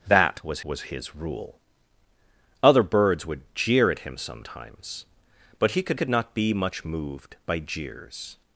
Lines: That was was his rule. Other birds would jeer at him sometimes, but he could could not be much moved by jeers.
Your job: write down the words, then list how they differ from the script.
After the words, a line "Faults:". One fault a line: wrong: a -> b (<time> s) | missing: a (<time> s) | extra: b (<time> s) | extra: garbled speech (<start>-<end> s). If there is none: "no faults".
That was was his rule. Other birds would jeer at him sometimes, but he could could not be much moved by jeers.
Faults:
no faults